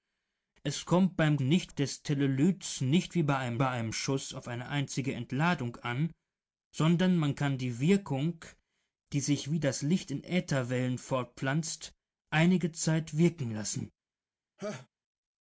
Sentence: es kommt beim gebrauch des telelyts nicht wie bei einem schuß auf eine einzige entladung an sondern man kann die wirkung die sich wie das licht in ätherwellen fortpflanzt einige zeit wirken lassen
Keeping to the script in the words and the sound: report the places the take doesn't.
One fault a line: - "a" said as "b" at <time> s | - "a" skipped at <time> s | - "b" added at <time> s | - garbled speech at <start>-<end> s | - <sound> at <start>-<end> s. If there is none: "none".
- "gebrauch" said as "nicht" at 1.4 s
- "bei einem" added at 3.6 s
- laugh at 14.6-14.9 s